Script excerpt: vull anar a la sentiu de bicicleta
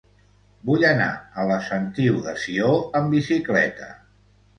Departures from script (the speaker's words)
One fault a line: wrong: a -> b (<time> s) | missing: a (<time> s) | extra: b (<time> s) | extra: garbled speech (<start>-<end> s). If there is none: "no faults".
extra: sió amb (2.5 s)